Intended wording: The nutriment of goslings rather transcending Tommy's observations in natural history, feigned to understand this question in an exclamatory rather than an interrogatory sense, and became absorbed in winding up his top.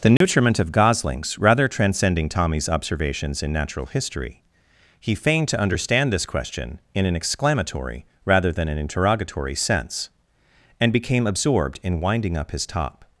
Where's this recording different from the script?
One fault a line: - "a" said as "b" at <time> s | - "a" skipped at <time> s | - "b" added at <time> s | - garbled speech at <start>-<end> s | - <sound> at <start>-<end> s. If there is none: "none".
- dropout at 0.2-0.2 s
- "he" added at 5.0 s